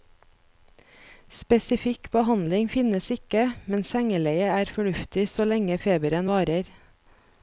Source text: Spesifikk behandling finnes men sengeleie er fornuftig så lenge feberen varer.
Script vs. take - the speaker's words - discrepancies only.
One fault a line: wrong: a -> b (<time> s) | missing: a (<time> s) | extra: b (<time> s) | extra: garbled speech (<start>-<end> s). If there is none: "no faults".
extra: ikke (3.1 s)